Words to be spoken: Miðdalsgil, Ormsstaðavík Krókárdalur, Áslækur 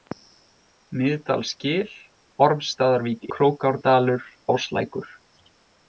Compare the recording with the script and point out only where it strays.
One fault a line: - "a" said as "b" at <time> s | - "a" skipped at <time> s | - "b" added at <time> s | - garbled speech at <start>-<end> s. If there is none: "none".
none